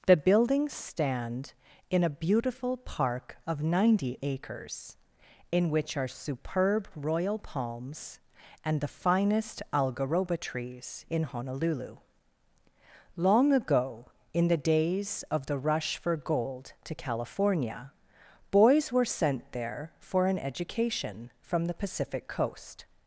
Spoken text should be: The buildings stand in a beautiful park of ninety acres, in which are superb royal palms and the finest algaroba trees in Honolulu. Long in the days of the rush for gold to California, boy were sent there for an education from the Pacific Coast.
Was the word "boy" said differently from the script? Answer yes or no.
yes